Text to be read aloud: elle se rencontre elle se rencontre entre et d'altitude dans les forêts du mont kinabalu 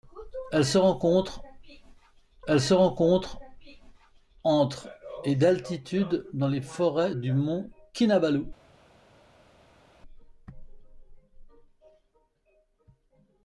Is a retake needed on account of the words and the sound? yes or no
no